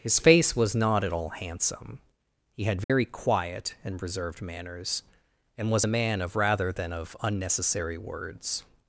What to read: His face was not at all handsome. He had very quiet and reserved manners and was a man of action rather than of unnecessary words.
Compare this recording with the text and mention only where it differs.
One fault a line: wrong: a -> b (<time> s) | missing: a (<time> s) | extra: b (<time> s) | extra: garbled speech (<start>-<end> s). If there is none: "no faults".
missing: action (6.4 s)